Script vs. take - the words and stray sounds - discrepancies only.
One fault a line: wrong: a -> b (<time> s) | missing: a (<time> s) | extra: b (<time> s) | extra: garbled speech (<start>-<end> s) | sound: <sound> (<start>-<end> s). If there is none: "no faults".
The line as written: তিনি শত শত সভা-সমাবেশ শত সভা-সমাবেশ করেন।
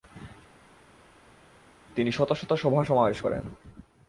missing: শত সভা-সমাবেশ (3.2 s)